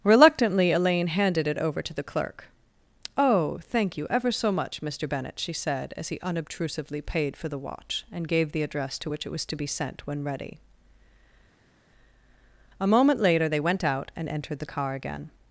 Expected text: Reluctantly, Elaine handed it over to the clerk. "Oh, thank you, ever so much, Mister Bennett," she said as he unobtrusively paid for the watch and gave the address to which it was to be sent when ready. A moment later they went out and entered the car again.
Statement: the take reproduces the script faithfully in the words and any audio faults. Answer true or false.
true